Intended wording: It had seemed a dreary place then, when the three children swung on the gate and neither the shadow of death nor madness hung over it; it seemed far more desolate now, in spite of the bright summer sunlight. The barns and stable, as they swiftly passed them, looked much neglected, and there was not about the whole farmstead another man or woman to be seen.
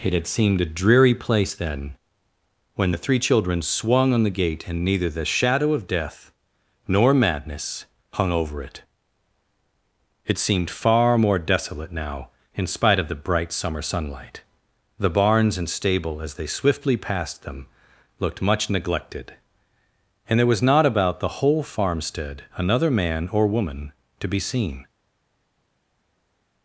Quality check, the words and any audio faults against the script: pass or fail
pass